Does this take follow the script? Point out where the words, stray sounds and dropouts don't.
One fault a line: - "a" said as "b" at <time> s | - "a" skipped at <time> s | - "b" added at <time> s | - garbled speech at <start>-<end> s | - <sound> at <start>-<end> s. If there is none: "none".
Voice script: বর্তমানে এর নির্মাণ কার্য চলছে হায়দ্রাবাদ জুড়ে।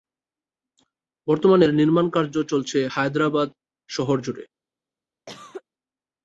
- "শহর" added at 3.9 s
- cough at 5.3-5.6 s